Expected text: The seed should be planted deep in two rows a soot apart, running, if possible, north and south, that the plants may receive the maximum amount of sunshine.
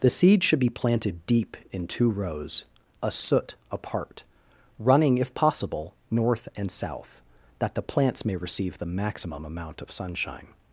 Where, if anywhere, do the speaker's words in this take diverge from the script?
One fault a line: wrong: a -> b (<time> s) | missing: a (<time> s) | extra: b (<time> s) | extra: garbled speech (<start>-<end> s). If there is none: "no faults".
no faults